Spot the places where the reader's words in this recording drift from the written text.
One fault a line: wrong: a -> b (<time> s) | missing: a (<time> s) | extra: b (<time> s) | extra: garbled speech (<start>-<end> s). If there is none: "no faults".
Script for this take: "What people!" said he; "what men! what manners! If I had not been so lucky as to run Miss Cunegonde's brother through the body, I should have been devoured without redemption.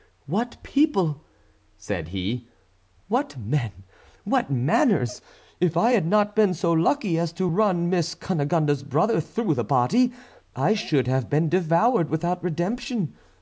no faults